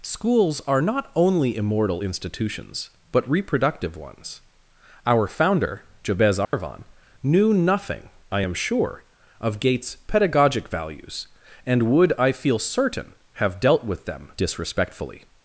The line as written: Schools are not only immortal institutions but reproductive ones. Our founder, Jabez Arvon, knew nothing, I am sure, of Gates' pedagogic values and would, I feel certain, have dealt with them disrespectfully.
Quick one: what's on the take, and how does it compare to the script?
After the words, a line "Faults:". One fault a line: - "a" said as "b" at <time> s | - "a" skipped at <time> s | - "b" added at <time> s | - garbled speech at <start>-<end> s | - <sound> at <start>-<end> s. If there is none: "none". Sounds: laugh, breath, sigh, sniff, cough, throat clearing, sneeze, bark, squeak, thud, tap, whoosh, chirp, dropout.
Schools are not only immortal institutions but reproductive ones. Our founder, Jabez Arvon, knew nothing, I am sure, of Gates' pedagogic values and would, I feel certain, have dealt with them disrespectfully.
Faults:
- dropout at 6.4-6.5 s